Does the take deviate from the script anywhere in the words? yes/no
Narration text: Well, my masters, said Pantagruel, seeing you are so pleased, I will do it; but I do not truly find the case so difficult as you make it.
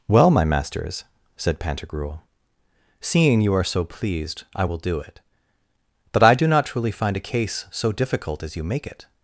yes